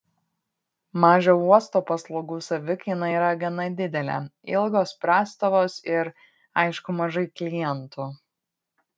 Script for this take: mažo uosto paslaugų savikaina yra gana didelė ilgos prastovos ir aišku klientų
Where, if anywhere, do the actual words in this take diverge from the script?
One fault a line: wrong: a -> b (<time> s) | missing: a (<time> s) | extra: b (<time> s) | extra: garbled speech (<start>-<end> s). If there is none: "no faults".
extra: mažai (7.0 s)